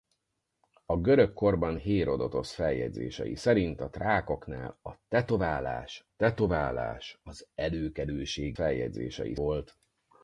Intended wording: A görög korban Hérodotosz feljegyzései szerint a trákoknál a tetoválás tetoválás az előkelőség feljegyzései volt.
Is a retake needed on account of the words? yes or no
no